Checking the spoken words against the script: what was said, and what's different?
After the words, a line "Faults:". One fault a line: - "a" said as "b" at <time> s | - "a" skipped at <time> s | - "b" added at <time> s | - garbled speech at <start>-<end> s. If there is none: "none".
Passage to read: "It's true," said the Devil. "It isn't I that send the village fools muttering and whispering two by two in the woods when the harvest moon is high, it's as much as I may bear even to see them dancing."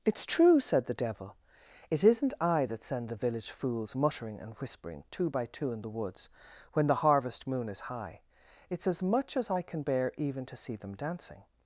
"It's true," said the Devil. "It isn't I that send the village fools muttering and whispering two by two in the woods when the harvest moon is high, it's as much as I can bear even to see them dancing."
Faults:
- "may" said as "can" at 9.6 s